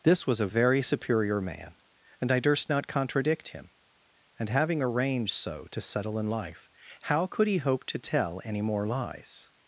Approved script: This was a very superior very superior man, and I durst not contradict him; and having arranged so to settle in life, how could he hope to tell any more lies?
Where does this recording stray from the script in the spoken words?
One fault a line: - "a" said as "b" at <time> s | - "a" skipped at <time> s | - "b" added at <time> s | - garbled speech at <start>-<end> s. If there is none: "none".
- "very superior" skipped at 1.4 s